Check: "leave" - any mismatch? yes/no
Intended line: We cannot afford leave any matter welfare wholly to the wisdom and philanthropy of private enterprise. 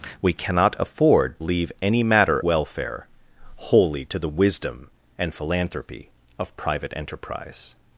no